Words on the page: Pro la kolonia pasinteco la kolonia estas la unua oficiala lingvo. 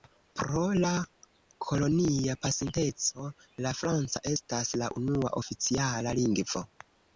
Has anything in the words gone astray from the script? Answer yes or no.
yes